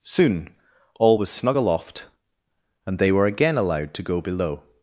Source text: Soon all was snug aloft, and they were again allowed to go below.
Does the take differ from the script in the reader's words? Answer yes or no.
no